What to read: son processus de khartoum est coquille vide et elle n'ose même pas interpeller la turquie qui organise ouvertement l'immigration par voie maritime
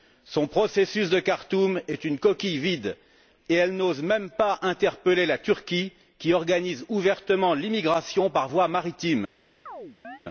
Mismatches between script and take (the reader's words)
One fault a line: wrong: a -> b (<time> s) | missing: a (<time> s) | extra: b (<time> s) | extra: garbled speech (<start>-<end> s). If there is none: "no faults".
extra: une (2.0 s)